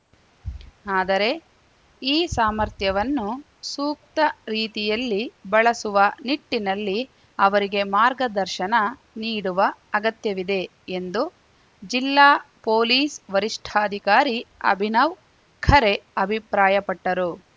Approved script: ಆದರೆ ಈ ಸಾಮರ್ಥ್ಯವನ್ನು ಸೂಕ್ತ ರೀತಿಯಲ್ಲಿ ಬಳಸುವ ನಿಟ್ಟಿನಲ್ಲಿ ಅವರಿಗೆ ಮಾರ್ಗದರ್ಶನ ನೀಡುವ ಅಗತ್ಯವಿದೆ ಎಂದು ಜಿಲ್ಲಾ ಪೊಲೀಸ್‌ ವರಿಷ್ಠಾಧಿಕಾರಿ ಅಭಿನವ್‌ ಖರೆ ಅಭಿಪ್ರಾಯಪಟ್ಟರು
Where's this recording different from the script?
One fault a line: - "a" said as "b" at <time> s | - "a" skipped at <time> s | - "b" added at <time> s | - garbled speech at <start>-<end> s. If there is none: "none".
none